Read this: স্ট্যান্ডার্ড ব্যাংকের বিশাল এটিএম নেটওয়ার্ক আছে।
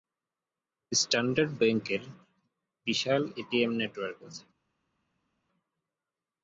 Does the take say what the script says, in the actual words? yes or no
yes